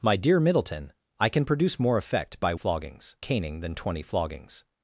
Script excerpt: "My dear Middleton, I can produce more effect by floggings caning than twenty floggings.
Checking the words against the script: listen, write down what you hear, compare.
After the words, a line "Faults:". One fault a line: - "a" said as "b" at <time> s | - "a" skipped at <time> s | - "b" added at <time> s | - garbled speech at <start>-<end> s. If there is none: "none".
"My dear Middleton, I can produce more effect by floggings caning than twenty floggings.
Faults:
none